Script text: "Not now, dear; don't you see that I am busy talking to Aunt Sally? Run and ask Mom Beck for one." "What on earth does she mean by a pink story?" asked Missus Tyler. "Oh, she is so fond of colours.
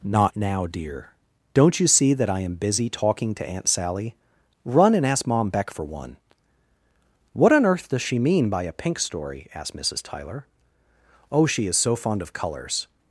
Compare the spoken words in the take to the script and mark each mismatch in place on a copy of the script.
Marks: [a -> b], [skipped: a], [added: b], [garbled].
"Not now, dear; don't you see that I am busy talking to Aunt Sally? Run and ask Mom Beck for one." "What on earth does she mean by a pink story?" asked Missus Tyler. "Oh, she is so fond of colours.